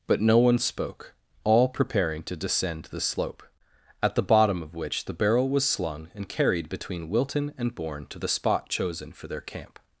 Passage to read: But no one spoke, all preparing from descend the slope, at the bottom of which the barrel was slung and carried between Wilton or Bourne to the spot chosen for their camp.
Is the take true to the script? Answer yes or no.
no